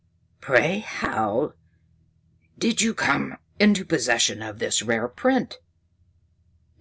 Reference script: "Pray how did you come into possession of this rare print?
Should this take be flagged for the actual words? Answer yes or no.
no